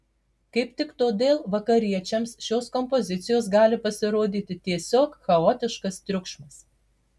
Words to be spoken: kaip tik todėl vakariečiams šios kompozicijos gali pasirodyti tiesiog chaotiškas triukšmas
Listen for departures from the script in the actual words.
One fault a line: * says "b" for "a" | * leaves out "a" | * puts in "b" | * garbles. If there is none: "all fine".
all fine